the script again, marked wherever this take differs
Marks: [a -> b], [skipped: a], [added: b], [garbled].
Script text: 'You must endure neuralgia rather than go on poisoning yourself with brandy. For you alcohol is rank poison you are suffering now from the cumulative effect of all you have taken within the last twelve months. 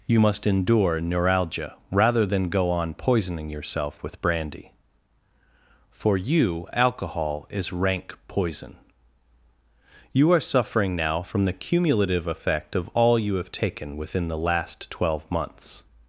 'You must endure neuralgia rather than go on poisoning yourself with brandy. For you alcohol is rank poison you are suffering now from the cumulative effect of all you have taken within the last twelve months.